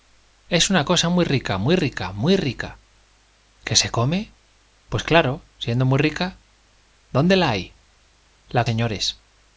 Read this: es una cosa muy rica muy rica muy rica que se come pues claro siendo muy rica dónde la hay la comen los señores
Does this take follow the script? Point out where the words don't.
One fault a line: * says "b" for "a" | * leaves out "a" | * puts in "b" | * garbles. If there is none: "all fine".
* leaves out "comen los"